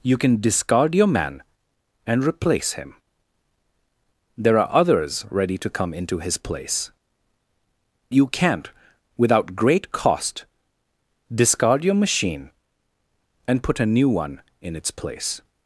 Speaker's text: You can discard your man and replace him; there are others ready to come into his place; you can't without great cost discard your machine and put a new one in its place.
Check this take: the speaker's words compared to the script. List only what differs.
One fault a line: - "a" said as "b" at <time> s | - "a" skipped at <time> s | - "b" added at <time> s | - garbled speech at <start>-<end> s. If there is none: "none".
none